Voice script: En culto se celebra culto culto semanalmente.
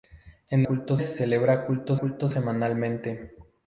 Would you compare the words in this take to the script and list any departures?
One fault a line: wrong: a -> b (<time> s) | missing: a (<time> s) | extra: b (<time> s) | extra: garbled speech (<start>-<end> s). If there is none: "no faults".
no faults